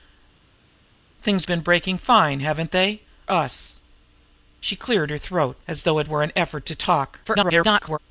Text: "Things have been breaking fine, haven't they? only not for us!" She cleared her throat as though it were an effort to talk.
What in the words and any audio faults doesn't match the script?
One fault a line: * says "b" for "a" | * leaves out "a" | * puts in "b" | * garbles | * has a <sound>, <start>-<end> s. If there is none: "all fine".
* leaves out "have"
* leaves out "only not for"
* garbles